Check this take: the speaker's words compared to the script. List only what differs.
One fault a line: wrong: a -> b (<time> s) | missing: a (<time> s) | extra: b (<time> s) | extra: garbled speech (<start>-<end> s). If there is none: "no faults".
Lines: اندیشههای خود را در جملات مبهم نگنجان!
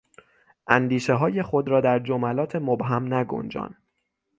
no faults